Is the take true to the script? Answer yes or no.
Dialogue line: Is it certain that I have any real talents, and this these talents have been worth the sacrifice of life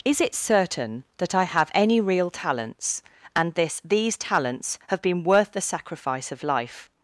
yes